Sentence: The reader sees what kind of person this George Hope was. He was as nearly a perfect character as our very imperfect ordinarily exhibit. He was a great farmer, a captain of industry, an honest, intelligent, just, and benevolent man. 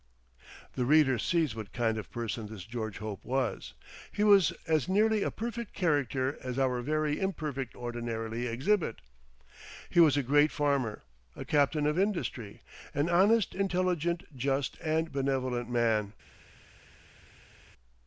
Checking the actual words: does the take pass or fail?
pass